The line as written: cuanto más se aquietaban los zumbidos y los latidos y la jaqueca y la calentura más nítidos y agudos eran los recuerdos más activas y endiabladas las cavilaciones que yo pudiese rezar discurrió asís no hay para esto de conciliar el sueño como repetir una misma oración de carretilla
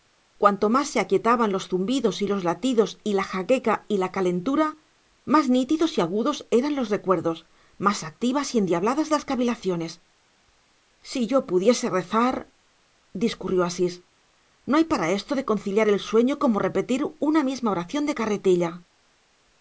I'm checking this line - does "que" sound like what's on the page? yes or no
no